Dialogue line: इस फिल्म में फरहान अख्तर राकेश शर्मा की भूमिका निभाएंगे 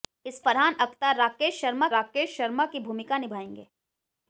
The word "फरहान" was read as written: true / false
false